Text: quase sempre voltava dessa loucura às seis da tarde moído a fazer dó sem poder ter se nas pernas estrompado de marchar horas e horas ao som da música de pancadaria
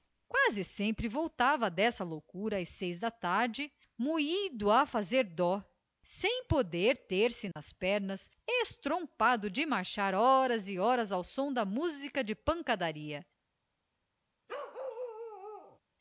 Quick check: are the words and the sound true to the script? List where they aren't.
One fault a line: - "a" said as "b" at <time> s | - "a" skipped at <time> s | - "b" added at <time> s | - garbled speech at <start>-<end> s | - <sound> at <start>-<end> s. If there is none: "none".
- dropout at 7.5-7.6 s
- bark at 14.5-15.8 s